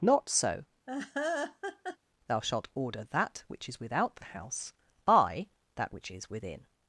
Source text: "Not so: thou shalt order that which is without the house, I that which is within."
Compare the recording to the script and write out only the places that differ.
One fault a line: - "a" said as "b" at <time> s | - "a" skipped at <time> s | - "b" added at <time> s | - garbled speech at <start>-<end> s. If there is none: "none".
none